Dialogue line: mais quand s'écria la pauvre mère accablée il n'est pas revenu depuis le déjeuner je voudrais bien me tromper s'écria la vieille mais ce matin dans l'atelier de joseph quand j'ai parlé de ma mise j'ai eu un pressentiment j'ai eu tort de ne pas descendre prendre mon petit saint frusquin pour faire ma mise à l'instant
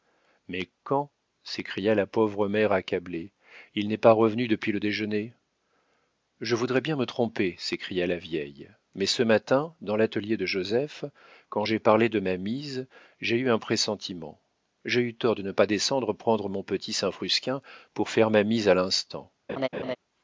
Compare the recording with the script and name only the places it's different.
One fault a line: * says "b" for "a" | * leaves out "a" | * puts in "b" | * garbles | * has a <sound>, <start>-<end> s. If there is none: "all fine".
* has a laugh, 19.5-20.0 s